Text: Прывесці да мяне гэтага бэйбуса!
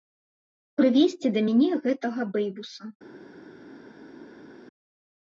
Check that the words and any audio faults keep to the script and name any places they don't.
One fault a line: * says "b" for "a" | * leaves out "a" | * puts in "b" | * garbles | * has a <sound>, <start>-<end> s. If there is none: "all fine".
all fine